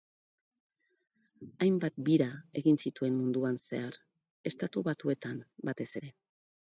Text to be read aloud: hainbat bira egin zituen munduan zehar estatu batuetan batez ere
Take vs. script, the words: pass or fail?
pass